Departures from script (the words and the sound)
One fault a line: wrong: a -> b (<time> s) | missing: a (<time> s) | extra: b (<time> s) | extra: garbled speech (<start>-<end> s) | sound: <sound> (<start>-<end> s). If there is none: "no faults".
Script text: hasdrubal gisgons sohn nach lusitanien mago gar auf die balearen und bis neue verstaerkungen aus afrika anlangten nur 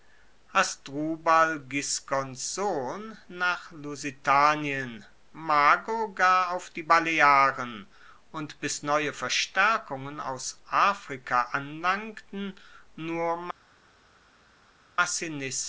no faults